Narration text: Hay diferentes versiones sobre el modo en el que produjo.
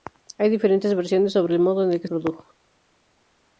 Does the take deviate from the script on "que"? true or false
false